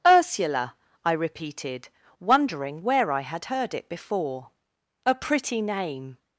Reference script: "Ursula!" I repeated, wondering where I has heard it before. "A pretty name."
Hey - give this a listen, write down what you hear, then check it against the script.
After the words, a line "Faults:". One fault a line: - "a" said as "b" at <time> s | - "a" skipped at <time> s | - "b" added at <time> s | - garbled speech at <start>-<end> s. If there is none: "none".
"Ursula!" I repeated, wondering where I had heard it before. "A pretty name."
Faults:
- "has" said as "had" at 3.2 s